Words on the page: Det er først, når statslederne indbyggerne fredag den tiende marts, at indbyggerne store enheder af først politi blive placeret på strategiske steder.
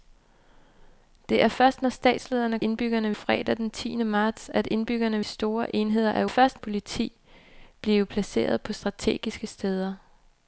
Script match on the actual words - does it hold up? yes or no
yes